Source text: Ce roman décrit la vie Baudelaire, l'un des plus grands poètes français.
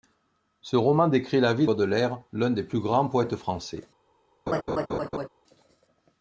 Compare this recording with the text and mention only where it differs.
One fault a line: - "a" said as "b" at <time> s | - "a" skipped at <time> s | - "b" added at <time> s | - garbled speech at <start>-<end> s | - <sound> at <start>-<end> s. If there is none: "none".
- laugh at 4.5-5.3 s